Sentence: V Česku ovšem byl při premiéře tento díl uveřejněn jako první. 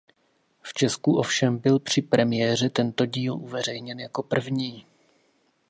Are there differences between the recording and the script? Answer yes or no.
no